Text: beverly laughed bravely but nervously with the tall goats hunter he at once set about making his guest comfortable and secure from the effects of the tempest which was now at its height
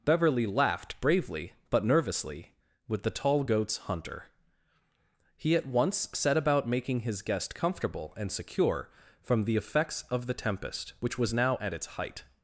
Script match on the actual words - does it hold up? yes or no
yes